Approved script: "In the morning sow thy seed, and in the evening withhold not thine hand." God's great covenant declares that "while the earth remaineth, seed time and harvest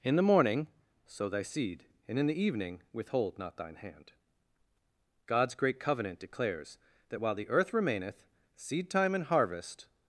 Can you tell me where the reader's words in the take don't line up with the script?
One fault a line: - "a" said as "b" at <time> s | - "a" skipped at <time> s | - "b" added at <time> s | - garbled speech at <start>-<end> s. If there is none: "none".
none